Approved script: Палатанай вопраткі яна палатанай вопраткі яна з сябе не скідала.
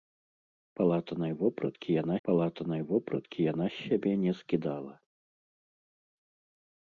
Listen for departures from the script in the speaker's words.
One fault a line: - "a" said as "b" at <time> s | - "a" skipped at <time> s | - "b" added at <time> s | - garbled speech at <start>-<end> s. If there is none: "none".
none